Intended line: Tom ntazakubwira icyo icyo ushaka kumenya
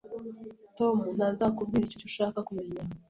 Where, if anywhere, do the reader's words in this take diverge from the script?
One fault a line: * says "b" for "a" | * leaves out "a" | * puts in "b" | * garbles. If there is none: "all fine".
all fine